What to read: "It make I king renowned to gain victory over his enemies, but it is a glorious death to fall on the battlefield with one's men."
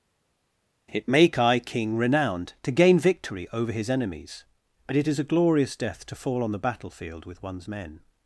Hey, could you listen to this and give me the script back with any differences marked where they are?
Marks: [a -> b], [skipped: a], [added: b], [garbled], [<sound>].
"It make I king renowned to gain victory over his enemies, but it is a glorious death to fall on the battlefield with one's men."